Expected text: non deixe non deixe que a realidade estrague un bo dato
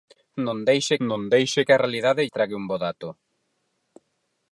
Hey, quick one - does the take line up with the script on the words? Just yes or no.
yes